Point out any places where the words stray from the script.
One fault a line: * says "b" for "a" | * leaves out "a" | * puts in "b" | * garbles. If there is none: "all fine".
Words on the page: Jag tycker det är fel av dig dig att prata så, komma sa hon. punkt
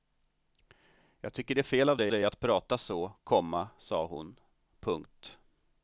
all fine